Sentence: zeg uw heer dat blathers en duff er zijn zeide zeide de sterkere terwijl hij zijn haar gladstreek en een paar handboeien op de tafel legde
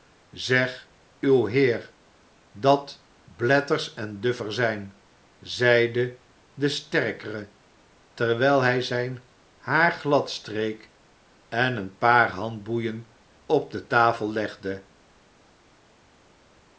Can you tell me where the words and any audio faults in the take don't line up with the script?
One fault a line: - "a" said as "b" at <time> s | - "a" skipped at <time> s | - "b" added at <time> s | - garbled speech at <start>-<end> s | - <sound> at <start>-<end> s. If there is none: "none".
- "zeide" skipped at 6.2 s